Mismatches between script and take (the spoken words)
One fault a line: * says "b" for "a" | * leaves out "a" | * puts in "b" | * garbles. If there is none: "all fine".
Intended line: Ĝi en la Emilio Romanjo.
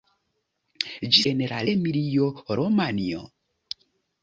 all fine